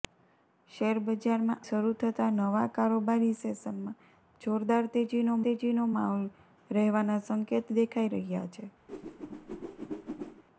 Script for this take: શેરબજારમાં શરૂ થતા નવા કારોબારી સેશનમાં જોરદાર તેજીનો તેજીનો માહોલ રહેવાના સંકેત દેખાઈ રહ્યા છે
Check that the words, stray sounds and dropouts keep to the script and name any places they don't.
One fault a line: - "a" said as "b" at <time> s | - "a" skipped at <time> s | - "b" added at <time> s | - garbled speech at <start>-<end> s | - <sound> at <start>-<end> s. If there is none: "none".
- whoosh at 8.9-10.4 s